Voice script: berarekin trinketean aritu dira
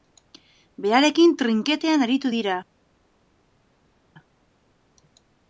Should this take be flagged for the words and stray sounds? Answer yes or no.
no